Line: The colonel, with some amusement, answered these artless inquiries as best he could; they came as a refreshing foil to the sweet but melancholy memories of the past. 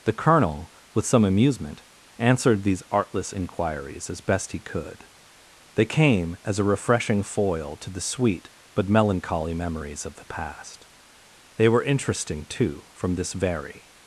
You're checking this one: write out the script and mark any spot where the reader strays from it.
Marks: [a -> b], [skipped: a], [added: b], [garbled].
The colonel, with some amusement, answered these artless inquiries as best he could; they came as a refreshing foil to the sweet but melancholy memories of the past. [added: They were interesting too from this very]